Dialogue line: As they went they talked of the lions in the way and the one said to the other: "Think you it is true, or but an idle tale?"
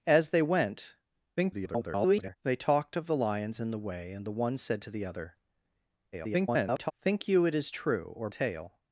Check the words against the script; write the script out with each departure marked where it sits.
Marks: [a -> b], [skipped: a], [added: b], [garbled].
As they went [garbled] they talked of the lions in the way and the one said to the other: [garbled] "Think you it is true, or [skipped: but an idle] tale?"